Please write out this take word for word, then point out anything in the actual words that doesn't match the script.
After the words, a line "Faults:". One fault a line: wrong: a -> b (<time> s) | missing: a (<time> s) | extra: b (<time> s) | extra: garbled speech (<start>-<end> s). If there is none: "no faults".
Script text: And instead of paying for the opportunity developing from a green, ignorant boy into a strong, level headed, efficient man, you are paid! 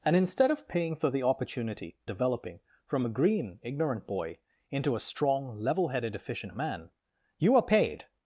And instead of paying for the opportunity developing from a green, ignorant boy into a strong, level headed, efficient man, you are paid!
Faults:
no faults